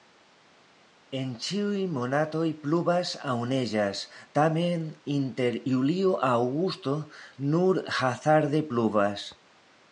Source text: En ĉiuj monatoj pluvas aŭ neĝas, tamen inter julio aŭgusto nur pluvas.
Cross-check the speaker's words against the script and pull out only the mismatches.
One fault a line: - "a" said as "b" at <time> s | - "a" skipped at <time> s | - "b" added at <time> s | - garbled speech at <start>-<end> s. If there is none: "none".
- "hazarde" added at 8.0 s